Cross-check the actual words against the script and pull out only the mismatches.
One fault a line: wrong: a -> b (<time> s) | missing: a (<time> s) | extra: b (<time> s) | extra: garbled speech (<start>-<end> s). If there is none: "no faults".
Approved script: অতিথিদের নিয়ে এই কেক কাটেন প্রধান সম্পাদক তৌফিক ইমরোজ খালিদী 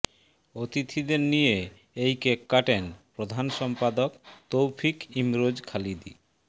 no faults